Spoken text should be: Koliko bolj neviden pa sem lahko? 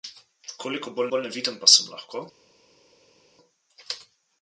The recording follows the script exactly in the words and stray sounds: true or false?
false